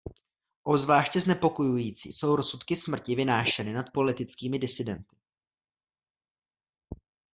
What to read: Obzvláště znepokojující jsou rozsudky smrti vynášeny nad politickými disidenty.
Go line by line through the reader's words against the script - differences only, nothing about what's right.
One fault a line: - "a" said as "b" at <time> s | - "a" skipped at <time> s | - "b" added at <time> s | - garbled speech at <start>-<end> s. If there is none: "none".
none